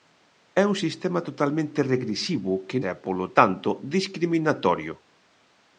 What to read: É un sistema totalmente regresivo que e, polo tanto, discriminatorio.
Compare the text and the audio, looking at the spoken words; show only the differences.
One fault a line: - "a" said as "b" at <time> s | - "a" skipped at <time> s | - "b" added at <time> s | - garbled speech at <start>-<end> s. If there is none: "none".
none